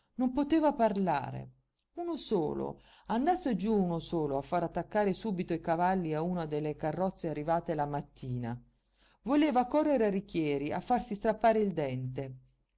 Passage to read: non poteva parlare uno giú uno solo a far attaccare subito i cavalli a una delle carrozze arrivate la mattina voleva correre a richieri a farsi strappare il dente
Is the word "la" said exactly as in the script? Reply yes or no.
yes